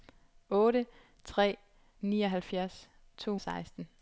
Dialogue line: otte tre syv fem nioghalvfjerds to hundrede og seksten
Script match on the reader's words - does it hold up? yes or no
no